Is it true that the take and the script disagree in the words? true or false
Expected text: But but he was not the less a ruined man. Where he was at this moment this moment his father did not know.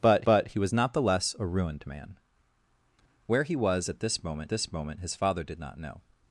false